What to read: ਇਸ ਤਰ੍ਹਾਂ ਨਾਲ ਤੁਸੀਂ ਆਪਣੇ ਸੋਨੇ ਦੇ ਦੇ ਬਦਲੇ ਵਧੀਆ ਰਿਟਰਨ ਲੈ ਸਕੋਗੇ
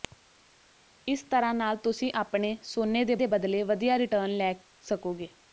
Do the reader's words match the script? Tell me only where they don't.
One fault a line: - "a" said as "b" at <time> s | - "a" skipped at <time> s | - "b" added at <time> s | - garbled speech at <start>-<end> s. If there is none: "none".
none